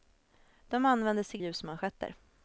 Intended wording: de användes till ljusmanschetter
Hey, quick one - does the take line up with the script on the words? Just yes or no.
yes